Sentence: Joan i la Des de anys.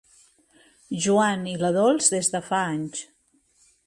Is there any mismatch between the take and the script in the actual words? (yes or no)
yes